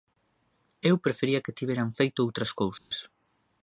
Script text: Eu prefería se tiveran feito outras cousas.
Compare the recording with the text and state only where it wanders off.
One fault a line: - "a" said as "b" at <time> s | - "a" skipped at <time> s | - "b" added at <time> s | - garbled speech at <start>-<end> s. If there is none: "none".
- "se" said as "que" at 1.4 s